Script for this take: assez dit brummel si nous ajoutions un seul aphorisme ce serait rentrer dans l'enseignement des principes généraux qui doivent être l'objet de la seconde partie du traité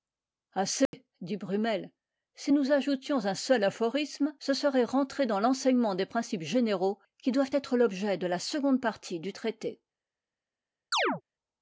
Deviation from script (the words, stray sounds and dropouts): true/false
true